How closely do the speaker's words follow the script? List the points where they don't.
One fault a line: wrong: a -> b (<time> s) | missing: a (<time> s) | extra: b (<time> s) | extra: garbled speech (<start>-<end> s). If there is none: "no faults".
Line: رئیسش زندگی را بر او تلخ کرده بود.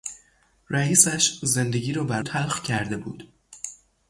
missing: او (2.2 s)